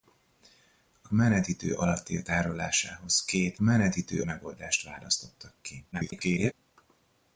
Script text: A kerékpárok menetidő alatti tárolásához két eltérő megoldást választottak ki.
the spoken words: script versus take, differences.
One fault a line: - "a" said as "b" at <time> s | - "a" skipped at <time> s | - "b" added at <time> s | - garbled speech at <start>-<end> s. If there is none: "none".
- "kerékpárok" skipped at 1.1 s
- "eltérő" said as "menetidő" at 3.6 s
- garbled speech at 5.9-6.5 s